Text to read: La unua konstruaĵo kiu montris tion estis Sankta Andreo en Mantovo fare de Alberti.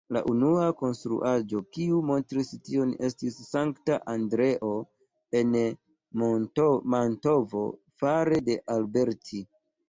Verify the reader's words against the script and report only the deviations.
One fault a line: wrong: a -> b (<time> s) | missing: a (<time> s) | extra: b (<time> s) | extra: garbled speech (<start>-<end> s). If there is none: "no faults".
no faults